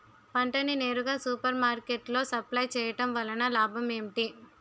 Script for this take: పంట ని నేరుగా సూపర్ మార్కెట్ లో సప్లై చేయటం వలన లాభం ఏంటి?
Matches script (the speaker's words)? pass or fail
pass